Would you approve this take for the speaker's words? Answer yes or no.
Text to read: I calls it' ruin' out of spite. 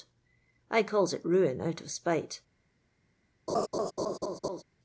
yes